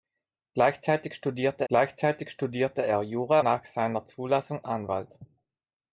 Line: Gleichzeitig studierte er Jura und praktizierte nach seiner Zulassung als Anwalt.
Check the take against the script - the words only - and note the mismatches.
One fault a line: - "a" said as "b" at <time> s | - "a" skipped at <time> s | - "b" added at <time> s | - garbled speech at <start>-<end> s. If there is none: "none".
- "gleichzeitig studierte" added at 1.7 s
- "und praktizierte" skipped at 3.4 s
- "als" skipped at 4.6 s